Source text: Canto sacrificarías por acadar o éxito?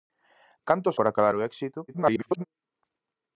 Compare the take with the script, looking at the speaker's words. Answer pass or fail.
fail